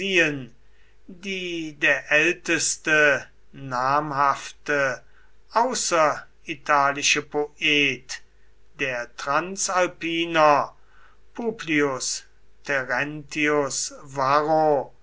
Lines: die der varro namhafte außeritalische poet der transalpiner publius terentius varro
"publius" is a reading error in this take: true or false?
false